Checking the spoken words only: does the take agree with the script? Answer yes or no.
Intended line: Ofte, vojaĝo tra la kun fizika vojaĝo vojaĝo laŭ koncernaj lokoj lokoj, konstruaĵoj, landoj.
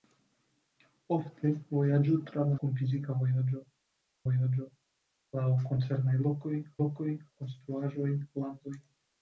yes